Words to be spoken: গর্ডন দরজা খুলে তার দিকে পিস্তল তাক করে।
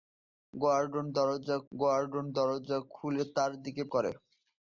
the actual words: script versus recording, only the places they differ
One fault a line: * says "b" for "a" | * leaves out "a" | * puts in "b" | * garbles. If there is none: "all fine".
* puts in "গর্ডন দরজা"
* leaves out "পিস্তল তাক"